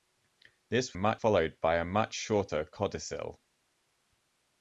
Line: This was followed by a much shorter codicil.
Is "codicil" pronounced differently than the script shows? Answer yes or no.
no